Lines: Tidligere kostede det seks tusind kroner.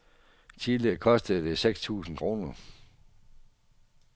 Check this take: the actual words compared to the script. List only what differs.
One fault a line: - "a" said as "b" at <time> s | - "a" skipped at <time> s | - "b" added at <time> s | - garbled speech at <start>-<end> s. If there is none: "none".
none